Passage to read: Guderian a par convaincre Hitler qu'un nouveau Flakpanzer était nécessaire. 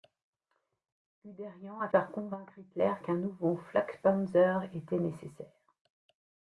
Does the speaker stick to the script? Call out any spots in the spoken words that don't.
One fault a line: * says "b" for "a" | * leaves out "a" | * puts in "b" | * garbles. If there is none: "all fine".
all fine